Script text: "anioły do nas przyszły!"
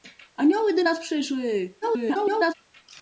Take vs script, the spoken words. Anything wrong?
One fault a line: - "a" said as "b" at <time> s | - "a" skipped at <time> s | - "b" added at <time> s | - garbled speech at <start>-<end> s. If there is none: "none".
- garbled speech at 1.8-2.5 s